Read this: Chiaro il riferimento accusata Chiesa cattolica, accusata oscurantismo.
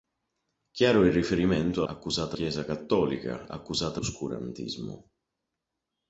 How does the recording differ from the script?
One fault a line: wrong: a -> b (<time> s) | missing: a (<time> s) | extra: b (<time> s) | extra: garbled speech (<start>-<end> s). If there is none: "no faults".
no faults